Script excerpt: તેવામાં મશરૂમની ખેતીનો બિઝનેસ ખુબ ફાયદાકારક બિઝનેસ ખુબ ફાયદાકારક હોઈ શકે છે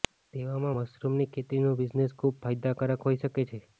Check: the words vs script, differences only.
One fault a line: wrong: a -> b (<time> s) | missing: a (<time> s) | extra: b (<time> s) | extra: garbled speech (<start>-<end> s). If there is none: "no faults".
missing: બિઝનેસ ખુબ ફાયદાકારક (3.1 s)